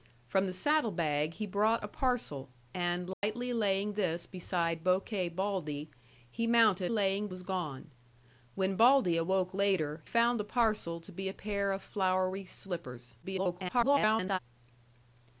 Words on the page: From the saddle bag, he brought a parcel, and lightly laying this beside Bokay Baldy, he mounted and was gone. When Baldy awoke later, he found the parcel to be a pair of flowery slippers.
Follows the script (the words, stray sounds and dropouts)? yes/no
no